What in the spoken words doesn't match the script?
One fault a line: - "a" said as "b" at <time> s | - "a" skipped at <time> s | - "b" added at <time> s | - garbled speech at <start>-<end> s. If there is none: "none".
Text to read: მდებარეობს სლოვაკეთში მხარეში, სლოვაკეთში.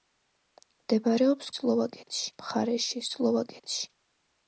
none